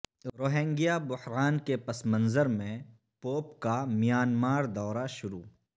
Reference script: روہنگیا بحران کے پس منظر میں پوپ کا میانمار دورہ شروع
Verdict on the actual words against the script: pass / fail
pass